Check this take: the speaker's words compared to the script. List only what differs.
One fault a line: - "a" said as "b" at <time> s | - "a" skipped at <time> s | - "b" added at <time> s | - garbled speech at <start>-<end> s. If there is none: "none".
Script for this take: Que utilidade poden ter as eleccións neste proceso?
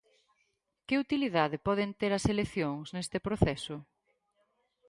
none